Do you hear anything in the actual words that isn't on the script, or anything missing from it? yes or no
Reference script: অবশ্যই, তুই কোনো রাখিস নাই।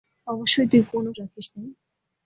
no